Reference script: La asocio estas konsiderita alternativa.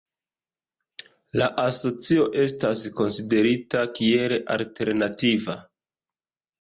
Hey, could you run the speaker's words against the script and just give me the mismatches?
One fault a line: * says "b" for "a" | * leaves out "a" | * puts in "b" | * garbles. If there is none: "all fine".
* puts in "kiel"